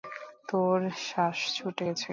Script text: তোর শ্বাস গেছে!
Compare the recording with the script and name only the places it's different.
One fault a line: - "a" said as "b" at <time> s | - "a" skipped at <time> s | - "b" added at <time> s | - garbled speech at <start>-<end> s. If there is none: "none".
- "ছুটে" added at 1.6 s